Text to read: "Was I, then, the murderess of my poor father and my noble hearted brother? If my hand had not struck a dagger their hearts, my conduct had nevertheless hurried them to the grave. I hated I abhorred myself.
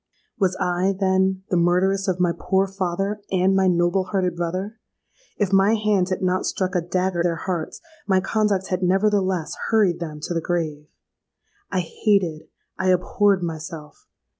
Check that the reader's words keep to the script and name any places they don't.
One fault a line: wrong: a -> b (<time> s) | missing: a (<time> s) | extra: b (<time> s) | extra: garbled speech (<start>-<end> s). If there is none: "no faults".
no faults